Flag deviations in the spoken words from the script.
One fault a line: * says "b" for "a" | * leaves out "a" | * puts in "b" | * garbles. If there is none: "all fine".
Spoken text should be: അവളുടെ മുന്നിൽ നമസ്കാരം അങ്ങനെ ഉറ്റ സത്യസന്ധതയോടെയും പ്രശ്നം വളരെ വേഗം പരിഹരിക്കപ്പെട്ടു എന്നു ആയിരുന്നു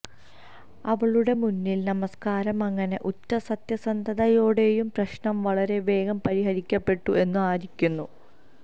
all fine